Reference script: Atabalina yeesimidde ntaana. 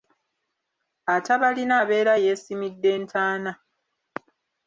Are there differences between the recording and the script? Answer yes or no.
yes